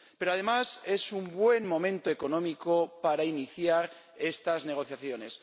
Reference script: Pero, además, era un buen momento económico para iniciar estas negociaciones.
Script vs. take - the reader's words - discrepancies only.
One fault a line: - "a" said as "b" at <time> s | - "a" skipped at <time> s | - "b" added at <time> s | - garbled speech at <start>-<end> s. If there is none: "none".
- "era" said as "es" at 0.8 s